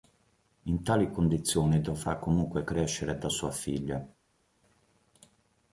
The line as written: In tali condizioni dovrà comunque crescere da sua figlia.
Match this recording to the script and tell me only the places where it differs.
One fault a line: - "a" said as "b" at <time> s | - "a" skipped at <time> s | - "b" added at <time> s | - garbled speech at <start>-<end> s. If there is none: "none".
none